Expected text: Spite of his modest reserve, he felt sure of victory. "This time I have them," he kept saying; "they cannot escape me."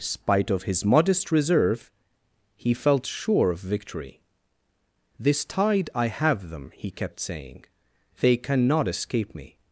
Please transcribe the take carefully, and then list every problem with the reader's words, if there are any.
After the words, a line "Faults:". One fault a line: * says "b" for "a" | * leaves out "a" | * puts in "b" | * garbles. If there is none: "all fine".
Spite of his modest reserve, he felt sure of victory. "This tide I have them," he kept saying; "they cannot escape me."
Faults:
* says "tide" for "time"